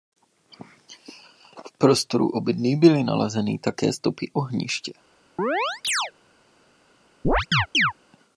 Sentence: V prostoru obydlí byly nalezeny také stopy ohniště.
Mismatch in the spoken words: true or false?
false